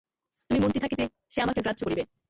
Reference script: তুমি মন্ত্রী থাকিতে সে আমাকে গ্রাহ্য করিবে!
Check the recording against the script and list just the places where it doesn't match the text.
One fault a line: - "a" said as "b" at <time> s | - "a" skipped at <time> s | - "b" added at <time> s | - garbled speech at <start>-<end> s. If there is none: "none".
none